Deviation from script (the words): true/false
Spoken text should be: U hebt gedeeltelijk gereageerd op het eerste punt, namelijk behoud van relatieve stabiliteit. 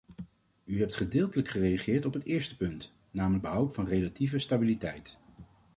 false